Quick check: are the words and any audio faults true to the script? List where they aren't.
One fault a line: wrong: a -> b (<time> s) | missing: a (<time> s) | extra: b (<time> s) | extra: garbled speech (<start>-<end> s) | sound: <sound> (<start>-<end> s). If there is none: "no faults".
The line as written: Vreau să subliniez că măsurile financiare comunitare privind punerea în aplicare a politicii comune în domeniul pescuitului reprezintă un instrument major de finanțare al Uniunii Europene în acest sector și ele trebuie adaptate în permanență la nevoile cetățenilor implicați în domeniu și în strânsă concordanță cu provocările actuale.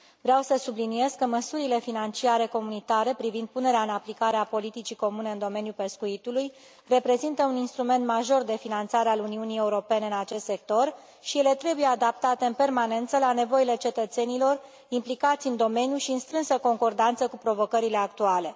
no faults